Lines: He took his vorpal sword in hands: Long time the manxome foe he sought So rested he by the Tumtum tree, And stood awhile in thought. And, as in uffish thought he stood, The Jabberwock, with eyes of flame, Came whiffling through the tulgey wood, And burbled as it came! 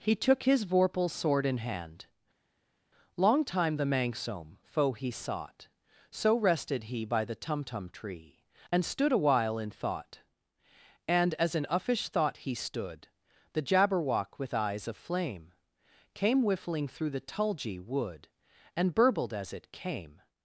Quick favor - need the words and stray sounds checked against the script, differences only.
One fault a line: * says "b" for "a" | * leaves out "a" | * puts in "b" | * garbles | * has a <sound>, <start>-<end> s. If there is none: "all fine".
* says "hand" for "hands"